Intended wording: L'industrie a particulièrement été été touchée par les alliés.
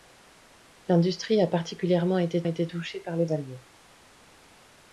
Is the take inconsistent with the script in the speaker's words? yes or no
no